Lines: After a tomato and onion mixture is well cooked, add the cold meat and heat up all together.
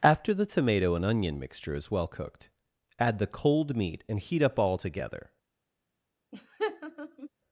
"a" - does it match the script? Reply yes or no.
no